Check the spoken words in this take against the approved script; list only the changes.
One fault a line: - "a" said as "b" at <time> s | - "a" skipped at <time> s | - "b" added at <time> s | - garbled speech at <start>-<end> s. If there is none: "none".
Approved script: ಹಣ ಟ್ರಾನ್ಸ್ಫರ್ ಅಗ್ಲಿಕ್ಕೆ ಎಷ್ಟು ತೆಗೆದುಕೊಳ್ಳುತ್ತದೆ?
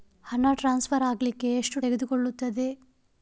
none